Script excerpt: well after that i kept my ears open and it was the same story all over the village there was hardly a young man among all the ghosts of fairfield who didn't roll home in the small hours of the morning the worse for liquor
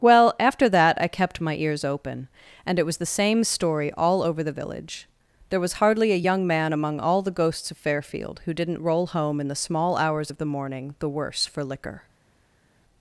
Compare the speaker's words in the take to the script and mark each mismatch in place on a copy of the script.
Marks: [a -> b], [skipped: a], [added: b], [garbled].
well after that i kept my ears open and it was the same story all over the village there was hardly a young man among all the ghosts of fairfield who didn't roll home in the small hours of the morning the worse for liquor